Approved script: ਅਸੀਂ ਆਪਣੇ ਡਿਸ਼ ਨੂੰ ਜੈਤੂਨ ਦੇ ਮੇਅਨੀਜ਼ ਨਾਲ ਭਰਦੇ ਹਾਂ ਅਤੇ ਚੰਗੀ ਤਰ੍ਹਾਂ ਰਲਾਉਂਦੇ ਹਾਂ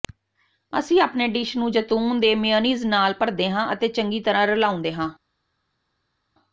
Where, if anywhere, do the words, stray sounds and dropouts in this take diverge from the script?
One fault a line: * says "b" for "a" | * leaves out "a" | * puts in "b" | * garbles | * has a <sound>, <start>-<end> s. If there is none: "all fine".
all fine